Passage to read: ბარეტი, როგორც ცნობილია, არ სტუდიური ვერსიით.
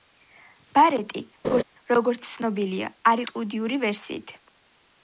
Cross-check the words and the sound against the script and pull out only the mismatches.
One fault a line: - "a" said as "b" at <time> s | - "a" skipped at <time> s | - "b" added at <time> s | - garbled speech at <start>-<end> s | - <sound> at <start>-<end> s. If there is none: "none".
- laugh at 1.4-1.6 s